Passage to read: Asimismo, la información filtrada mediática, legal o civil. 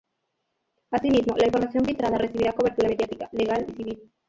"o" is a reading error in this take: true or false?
true